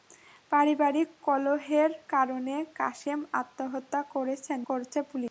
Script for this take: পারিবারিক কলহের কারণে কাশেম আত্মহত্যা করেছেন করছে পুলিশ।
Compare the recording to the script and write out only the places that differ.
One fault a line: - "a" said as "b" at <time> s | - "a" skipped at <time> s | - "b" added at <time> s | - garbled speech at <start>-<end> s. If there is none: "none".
none